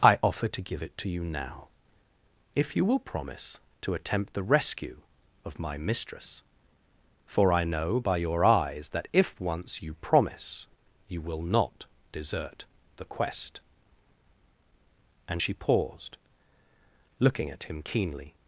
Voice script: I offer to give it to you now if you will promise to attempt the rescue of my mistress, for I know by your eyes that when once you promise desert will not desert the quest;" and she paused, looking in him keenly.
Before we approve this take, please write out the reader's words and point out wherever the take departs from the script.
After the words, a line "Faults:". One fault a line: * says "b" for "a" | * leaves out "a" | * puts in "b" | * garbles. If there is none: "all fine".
I offer to give it to you now if you will promise to attempt the rescue of my mistress, for I know by your eyes that if once you promise you will not desert the quest;" and she paused, looking at him keenly.
Faults:
* says "if" for "when"
* says "you" for "desert"
* says "at" for "in"